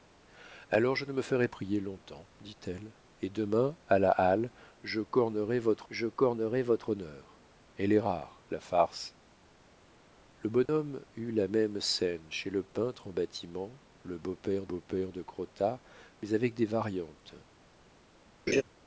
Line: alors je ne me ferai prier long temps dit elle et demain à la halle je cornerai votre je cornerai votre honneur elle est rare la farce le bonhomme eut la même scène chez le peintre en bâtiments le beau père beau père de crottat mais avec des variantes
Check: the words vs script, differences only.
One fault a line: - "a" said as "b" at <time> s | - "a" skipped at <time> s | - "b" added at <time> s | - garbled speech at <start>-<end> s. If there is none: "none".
none